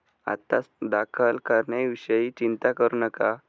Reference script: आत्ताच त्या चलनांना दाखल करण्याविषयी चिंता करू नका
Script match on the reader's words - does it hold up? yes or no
no